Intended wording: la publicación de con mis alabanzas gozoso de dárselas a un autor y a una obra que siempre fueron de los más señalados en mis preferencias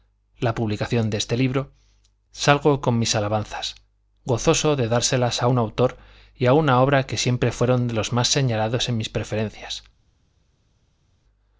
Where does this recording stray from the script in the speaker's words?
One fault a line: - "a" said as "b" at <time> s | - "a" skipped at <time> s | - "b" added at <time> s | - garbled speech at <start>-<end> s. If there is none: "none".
- "este libro salgo" added at 1.2 s